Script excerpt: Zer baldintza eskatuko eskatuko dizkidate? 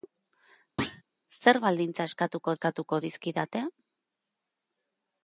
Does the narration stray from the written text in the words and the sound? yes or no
yes